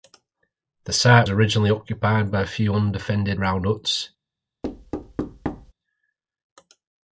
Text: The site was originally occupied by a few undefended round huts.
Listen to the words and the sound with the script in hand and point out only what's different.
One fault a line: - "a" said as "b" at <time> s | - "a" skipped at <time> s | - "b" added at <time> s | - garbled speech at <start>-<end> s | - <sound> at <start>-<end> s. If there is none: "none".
- "was" skipped at 1.3 s
- thud at 4.6-5.7 s